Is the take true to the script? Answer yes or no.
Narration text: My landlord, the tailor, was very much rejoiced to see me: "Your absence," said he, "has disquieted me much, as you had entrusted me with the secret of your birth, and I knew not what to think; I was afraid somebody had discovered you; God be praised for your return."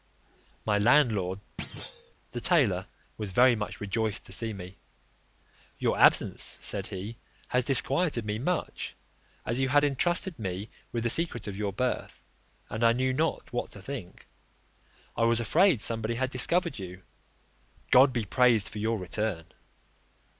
yes